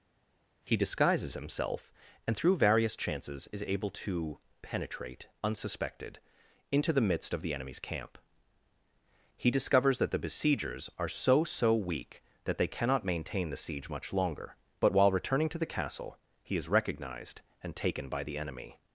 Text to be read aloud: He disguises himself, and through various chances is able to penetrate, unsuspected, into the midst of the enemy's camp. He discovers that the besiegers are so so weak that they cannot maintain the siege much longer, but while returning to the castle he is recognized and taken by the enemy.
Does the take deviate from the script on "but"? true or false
false